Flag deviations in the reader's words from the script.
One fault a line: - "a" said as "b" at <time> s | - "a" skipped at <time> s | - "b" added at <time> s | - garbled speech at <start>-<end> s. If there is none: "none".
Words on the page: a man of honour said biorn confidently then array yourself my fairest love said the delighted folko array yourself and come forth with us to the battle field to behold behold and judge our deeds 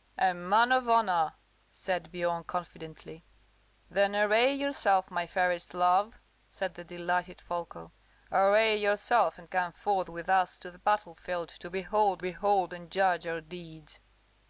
none